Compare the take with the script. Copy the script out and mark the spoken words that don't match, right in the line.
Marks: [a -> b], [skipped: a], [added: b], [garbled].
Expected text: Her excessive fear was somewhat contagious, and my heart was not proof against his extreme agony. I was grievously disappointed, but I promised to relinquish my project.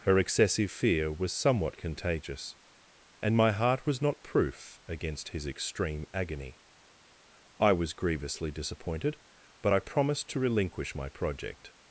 Her excessive fear was somewhat contagious, and my heart was not proof against his extreme agony. I was grievously disappointed, but I promised to relinquish my project.